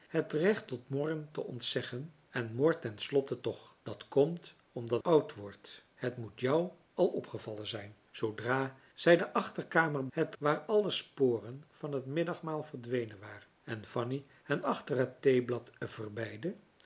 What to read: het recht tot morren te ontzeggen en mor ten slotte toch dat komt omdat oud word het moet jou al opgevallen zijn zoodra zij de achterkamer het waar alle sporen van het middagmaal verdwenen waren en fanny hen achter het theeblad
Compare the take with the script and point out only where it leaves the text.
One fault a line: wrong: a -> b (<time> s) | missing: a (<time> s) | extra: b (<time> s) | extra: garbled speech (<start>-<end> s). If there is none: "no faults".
no faults